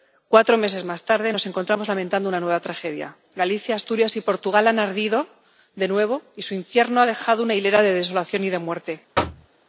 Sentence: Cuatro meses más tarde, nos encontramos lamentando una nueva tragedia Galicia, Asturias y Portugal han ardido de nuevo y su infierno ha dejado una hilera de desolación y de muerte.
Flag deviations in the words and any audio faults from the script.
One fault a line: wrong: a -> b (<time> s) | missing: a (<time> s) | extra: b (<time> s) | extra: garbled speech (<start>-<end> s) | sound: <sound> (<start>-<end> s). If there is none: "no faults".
sound: thud (9.1-9.5 s)